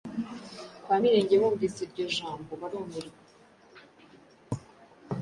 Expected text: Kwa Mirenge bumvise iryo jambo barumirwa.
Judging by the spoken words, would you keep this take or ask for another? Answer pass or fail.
pass